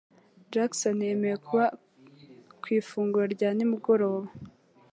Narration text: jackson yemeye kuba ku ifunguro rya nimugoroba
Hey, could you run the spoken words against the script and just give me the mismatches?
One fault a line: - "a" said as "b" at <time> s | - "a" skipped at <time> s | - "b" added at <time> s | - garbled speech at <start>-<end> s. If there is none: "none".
none